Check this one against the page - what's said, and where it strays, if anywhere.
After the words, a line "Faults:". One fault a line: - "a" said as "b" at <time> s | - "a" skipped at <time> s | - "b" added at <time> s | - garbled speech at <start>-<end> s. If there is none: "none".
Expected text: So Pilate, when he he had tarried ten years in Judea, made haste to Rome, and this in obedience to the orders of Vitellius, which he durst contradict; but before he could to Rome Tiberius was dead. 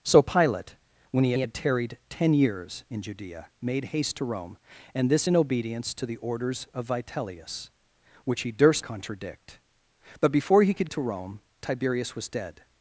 So Pilate, when he he had tarried ten years in Judea, made haste to Rome, and this in obedience to the orders of Vitellius, which he durst contradict; but before he could to Rome Tiberius was dead.
Faults:
none